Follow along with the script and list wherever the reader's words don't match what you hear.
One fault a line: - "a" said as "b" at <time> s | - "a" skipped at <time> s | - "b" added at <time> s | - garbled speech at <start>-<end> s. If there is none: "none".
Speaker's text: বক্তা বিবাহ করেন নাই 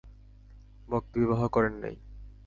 none